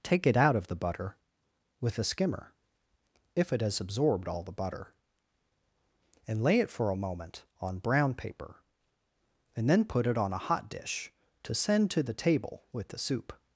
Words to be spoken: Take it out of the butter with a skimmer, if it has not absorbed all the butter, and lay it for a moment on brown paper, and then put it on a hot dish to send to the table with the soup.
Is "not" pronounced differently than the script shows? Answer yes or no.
yes